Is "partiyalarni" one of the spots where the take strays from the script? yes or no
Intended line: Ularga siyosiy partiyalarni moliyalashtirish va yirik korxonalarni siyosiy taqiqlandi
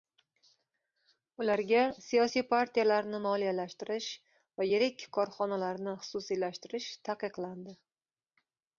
no